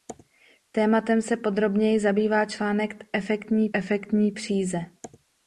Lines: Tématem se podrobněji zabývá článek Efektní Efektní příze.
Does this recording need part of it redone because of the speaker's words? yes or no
no